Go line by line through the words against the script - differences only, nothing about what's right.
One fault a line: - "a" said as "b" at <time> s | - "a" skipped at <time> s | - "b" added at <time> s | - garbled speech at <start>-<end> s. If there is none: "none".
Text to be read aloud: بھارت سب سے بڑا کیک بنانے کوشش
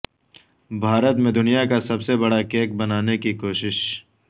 - "میں دنیا کا" added at 1.1 s
- "کی" added at 3.2 s